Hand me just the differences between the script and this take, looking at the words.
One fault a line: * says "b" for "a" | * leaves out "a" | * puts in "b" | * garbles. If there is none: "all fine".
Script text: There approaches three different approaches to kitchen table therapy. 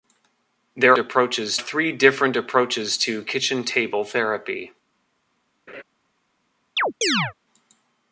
all fine